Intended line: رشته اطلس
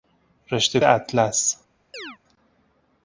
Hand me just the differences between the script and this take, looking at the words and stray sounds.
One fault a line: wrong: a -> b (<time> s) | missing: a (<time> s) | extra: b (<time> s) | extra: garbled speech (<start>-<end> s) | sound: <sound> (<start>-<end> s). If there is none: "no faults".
sound: chirp (1.9-2.2 s)